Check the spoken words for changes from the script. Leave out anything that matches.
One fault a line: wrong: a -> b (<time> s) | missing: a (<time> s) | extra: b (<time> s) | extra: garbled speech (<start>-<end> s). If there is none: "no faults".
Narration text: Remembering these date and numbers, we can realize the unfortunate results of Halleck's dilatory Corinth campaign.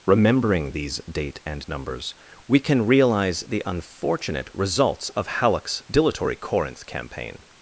no faults